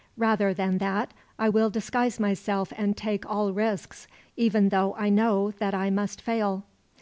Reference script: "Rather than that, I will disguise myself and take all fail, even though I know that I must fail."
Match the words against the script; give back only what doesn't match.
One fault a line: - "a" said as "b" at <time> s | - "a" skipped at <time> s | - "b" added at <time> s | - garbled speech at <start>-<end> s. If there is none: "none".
- "fail" said as "risks" at 3.5 s